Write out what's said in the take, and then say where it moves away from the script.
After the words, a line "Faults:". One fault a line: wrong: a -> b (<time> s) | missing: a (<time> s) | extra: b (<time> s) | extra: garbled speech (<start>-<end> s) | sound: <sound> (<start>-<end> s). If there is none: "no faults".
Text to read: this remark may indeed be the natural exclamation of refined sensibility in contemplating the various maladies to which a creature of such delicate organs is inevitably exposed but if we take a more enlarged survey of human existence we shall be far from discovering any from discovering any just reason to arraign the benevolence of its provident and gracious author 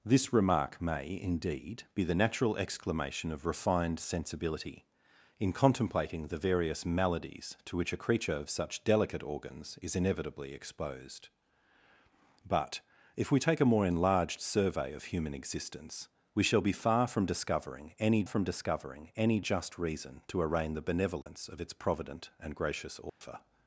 this remark may indeed be the natural exclamation of refined sensibility in contemplating the various maladies to which a creature of such delicate organs is inevitably exposed but if we take a more enlarged survey of human existence we shall be far from discovering any from discovering any just reason to arraign the benevolence of its provident and gracious author
Faults:
sound: dropout (21.2-21.3 s)
sound: dropout (23.1-23.2 s)